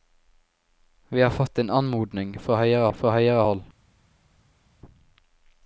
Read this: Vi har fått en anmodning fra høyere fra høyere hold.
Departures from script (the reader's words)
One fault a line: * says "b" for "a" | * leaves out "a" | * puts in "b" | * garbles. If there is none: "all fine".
all fine